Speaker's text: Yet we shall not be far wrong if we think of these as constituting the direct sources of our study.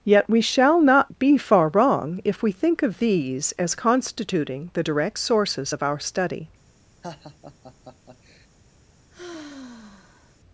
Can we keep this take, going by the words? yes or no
yes